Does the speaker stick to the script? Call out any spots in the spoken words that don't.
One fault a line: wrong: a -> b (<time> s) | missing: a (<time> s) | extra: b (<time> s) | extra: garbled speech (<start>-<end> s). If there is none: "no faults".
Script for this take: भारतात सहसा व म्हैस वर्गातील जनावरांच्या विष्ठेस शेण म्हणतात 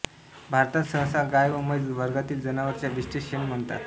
extra: गाय (1.3 s)